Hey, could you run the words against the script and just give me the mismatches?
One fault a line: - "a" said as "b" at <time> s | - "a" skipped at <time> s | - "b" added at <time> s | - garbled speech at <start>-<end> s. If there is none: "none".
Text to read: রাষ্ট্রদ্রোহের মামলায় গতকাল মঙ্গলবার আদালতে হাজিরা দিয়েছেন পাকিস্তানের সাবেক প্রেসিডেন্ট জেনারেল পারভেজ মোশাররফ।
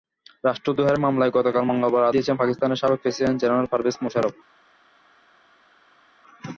- "আদালতে হাজিরা" skipped at 2.1 s